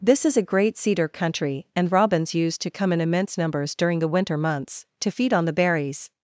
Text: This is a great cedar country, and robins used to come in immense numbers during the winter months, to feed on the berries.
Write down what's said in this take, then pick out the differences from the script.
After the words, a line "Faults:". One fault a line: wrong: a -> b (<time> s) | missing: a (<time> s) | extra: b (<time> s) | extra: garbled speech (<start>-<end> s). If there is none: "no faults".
This is a great cedar country, and robins used to come in immense numbers during the winter months, to feed on the berries.
Faults:
no faults